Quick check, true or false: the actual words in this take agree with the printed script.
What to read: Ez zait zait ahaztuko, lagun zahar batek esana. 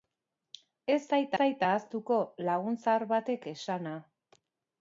true